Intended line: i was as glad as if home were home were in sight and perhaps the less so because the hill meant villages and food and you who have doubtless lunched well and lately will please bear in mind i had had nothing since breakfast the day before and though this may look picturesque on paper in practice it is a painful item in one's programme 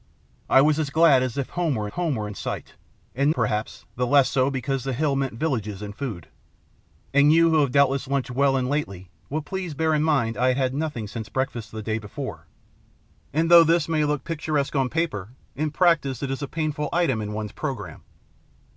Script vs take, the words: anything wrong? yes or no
no